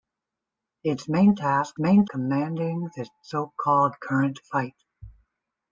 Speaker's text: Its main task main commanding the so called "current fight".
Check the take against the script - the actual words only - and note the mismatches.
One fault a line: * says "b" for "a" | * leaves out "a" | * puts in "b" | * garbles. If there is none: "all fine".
all fine